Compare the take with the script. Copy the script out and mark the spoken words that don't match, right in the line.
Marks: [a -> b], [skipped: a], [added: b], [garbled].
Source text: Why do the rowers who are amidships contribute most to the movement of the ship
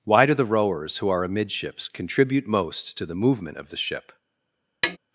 Why do the rowers who are amidships contribute most to the movement of the ship